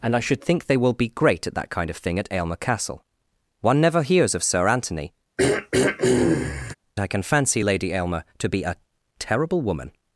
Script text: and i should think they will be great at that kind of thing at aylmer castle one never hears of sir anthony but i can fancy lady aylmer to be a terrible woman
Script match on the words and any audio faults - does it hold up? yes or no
no